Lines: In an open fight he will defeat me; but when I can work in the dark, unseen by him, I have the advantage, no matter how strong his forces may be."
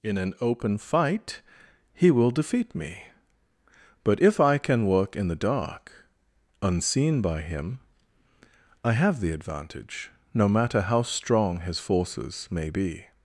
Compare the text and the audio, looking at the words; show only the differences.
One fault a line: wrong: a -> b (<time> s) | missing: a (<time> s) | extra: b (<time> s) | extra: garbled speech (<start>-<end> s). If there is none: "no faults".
wrong: when -> if (4.2 s)